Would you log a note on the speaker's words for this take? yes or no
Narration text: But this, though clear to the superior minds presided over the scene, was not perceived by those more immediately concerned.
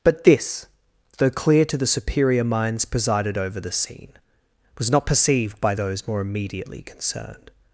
no